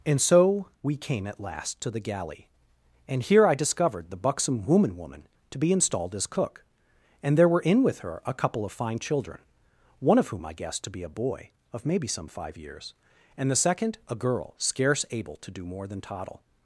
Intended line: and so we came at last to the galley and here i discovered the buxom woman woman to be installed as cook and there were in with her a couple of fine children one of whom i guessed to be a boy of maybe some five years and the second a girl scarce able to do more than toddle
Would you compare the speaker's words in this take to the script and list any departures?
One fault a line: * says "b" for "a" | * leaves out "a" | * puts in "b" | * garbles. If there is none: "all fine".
all fine